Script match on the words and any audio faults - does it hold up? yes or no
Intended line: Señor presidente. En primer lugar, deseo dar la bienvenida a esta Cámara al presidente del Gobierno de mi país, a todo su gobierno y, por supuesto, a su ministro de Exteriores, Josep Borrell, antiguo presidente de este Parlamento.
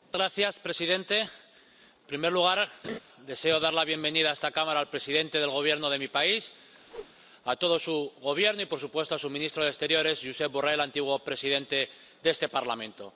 no